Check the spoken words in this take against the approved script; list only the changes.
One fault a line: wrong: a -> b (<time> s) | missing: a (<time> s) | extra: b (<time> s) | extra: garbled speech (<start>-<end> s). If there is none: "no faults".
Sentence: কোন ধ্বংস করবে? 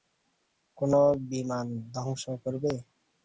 extra: বিমান (1.3 s)